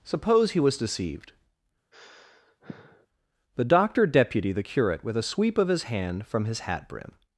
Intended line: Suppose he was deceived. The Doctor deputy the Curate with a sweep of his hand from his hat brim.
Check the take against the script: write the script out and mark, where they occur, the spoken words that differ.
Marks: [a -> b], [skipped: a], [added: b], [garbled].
Suppose he was deceived. The Doctor deputy the Curate with a sweep of his hand from his hat brim.